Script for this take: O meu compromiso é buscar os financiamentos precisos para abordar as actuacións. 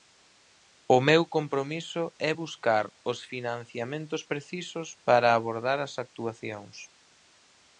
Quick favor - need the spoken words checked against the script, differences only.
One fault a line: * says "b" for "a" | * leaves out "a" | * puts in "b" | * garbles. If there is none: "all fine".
all fine